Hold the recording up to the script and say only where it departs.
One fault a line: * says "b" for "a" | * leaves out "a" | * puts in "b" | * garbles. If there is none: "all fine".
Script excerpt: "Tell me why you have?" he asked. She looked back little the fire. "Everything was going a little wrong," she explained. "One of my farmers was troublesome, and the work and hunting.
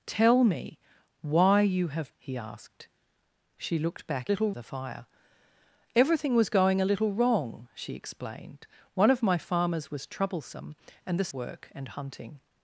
all fine